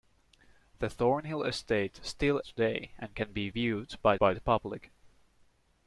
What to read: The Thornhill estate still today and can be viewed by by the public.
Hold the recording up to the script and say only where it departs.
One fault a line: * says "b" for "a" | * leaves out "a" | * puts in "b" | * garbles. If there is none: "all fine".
all fine